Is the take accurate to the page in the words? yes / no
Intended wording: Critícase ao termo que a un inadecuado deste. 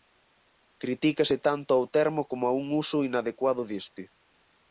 no